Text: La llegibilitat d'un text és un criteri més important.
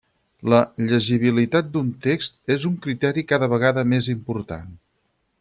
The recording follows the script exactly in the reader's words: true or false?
false